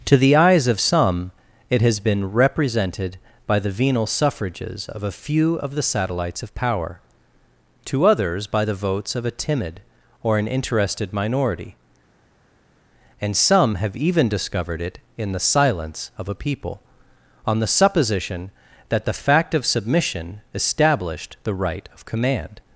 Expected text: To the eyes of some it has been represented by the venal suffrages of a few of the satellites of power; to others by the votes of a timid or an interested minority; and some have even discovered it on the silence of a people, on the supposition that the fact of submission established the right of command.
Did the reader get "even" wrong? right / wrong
right